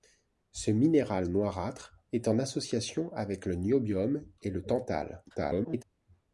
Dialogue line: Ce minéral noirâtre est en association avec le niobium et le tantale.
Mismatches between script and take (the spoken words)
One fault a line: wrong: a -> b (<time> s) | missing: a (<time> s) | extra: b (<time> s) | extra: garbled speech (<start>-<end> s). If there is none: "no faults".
extra: garbled speech (5.3-5.8 s)